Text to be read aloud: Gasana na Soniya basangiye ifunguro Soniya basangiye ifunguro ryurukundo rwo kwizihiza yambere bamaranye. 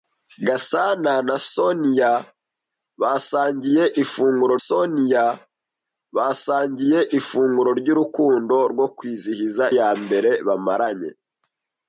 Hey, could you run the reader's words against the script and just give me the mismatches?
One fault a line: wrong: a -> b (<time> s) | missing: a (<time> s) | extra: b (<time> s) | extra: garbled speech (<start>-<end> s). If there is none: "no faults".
no faults